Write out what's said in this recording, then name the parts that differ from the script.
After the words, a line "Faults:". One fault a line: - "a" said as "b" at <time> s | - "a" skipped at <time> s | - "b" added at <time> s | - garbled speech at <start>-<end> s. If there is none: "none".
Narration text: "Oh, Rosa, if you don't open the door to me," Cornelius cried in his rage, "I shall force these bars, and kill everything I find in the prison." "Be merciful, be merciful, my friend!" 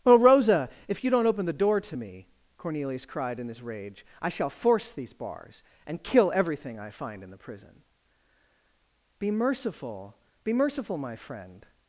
"Oh, Rosa, if you don't open the door to me," Cornelius cried in his rage, "I shall force these bars, and kill everything I find in the prison." "Be merciful, be merciful, my friend!"
Faults:
none